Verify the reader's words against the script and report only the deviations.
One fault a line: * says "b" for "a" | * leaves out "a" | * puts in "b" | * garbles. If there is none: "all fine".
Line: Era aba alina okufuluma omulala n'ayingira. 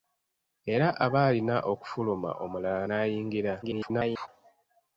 * garbles